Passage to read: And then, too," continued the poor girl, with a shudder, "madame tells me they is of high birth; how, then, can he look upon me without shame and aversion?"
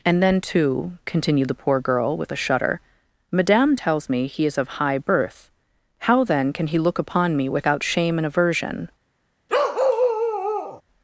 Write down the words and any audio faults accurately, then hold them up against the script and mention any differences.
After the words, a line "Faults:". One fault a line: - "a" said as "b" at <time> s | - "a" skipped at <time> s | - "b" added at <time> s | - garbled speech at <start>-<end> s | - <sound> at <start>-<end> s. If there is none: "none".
And then, too," continued the poor girl, with a shudder, "madame tells me he is of high birth; how, then, can he look upon me without shame and aversion?"
Faults:
- "they" said as "he" at 4.3 s
- bark at 9.5-10.8 s